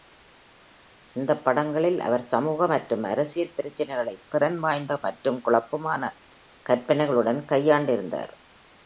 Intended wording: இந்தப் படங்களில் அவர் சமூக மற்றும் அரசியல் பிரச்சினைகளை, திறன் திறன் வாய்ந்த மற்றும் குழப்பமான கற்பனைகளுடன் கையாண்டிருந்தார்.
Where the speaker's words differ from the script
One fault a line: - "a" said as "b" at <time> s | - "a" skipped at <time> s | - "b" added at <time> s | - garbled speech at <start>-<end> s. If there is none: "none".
- "திறன்" skipped at 4.6 s